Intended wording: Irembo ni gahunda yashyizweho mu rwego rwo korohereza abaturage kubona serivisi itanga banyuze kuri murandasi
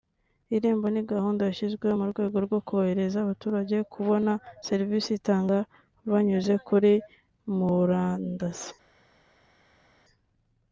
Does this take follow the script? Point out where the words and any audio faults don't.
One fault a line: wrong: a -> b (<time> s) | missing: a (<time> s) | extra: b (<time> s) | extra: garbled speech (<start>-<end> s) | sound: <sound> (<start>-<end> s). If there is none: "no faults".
no faults